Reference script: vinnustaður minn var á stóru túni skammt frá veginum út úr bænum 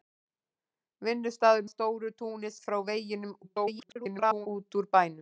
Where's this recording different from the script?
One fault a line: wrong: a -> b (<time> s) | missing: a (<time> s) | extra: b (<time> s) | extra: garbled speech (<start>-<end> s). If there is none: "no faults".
missing: minn var (1.7 s)
missing: skammt (2.5 s)
extra: garbled speech (3.4-4.5 s)